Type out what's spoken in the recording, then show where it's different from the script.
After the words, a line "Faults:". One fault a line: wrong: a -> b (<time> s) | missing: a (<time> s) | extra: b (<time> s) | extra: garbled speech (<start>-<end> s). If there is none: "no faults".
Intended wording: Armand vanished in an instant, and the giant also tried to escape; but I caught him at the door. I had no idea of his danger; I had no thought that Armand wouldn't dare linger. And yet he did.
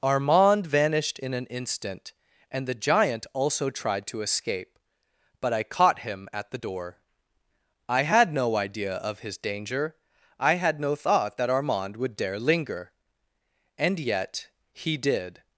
Armand vanished in an instant, and the giant also tried to escape; but I caught him at the door. I had no idea of his danger; I had no thought that Armand would dare linger. And yet he did.
Faults:
wrong: wouldn't -> would (12.0 s)